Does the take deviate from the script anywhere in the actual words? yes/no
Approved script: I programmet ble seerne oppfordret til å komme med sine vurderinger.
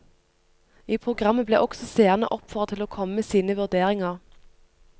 yes